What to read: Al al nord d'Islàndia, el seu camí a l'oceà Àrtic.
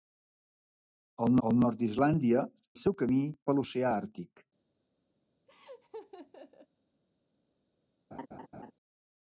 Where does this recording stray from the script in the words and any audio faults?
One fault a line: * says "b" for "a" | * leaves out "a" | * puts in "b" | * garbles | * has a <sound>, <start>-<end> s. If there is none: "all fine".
* has a laugh, 5.5-6.7 s
* has a laugh, 8.1-8.7 s